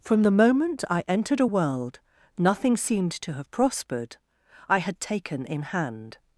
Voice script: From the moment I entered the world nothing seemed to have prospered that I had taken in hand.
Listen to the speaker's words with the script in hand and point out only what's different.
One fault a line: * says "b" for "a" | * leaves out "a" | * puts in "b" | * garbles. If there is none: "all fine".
* says "a" for "the"
* leaves out "that"